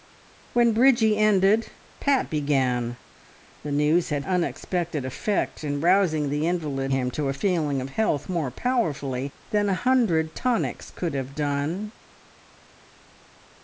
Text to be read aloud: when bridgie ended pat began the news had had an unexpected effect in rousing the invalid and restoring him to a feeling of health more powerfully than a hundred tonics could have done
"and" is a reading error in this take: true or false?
true